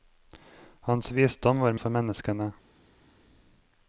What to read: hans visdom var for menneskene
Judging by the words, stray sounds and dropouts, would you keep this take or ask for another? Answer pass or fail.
pass